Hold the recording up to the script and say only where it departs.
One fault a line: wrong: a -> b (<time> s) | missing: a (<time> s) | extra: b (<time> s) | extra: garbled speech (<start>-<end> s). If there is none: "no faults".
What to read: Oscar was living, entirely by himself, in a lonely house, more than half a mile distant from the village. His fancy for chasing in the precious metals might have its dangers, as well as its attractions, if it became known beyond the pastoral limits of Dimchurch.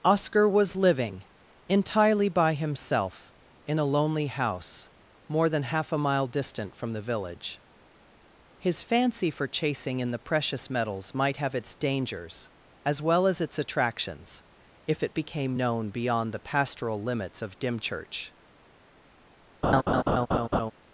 no faults